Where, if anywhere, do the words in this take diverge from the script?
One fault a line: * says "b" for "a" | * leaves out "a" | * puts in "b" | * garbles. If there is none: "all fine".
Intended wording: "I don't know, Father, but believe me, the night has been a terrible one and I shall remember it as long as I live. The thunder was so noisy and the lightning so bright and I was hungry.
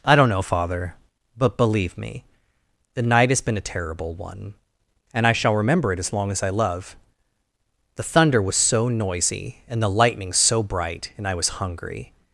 * says "love" for "live"